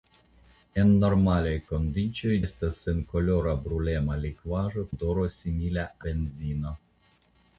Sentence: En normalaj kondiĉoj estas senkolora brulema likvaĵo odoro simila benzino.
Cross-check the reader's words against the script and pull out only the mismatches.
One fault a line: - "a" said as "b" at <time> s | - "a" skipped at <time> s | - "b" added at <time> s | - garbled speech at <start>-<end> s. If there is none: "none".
none